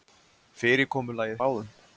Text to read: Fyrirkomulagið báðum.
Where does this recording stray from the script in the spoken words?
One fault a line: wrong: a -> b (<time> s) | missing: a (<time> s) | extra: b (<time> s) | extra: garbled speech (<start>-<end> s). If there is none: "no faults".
no faults